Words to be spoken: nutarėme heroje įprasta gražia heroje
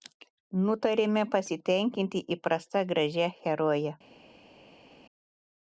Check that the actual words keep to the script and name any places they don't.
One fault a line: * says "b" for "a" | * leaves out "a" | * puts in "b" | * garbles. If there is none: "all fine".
* says "pasitenkinti" for "heroje"